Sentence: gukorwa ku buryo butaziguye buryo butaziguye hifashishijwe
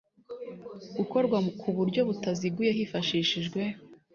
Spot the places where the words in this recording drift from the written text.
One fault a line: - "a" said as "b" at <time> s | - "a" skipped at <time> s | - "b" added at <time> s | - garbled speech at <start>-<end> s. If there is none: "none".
- "buryo butaziguye" skipped at 2.7 s